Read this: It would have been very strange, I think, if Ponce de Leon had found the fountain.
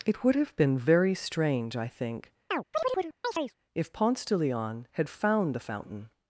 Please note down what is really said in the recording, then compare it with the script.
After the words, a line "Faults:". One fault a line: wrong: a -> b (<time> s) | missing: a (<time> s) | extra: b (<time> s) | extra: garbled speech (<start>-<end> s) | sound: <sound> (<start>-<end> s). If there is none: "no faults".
It would have been very strange, I think, if Ponce de Leon had found the fountain.
Faults:
sound: chirp (2.5-3.5 s)